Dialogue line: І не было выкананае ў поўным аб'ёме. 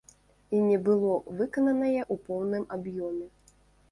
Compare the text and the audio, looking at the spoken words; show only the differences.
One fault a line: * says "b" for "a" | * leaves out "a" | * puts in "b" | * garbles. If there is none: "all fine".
all fine